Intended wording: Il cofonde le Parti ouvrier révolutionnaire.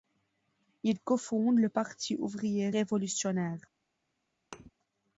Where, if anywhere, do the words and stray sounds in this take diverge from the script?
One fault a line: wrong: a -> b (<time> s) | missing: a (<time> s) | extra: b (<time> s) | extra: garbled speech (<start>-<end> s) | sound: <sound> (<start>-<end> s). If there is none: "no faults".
sound: thud (4.5-4.7 s)